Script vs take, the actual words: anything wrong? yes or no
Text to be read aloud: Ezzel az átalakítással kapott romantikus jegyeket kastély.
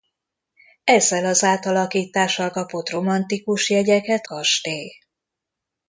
no